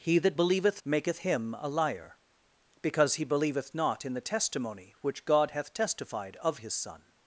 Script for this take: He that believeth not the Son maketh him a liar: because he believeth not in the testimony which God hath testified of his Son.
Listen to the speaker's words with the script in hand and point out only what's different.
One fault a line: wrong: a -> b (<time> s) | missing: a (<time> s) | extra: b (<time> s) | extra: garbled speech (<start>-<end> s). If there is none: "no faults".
missing: not the Son (0.8 s)